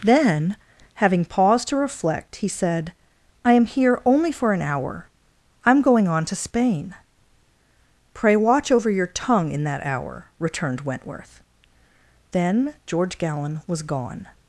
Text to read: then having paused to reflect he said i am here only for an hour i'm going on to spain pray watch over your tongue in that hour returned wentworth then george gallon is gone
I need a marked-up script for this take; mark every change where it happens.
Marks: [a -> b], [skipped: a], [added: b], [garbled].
then having paused to reflect he said i am here only for an hour i'm going on to spain pray watch over your tongue in that hour returned wentworth then george gallon [is -> was] gone